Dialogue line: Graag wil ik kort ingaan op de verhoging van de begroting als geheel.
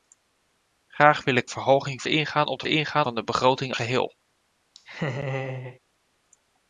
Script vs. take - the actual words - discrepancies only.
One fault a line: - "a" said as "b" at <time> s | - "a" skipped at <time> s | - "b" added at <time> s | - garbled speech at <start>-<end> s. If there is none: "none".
- "kort" said as "verhoging" at 1.5 s
- "verhoging" said as "ingaan" at 2.7 s
- "als" skipped at 3.7 s